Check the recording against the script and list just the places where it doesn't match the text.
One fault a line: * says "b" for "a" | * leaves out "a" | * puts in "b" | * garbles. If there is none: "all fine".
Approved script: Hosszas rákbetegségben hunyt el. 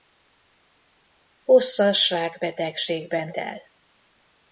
* leaves out "hunyt"